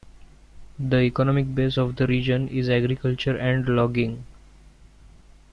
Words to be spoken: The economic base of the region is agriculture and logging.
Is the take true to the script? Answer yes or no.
yes